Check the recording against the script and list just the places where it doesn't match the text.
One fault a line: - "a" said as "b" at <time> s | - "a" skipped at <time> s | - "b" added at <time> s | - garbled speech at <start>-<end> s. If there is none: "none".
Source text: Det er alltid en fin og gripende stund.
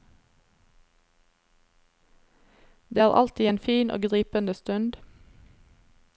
none